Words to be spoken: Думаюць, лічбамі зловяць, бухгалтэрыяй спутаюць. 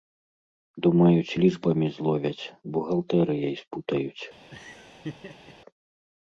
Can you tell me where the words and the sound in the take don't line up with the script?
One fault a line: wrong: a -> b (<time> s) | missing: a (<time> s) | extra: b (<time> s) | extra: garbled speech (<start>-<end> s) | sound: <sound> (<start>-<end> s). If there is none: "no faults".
sound: laugh (4.5-5.5 s)